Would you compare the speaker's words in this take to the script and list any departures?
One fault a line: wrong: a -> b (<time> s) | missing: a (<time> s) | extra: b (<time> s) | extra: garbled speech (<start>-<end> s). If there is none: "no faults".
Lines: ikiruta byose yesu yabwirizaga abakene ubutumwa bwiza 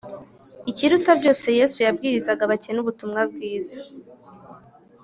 no faults